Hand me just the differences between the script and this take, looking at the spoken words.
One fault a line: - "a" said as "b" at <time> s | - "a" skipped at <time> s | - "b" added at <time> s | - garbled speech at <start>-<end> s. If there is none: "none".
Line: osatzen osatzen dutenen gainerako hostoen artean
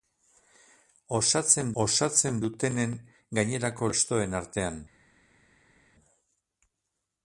none